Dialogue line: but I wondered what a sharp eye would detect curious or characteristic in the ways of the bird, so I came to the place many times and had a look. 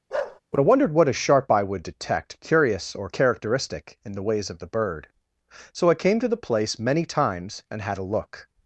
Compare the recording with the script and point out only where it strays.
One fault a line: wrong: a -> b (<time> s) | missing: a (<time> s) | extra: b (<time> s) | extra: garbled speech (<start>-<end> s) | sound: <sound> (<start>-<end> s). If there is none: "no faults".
sound: bark (0.1-0.4 s)